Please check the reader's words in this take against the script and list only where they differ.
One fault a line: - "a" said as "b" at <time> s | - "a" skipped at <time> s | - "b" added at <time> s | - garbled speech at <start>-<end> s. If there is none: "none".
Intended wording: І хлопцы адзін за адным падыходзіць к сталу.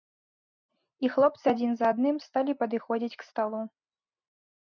- "сталі" added at 2.3 s